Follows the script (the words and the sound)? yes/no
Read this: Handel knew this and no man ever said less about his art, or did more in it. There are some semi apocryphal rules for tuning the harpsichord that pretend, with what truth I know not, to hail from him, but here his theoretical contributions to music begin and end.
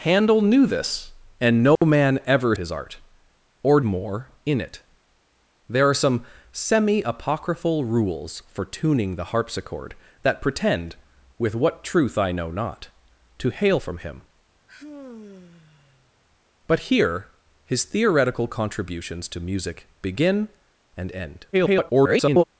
no